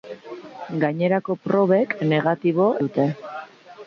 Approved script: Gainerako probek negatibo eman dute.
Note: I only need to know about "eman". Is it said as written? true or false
false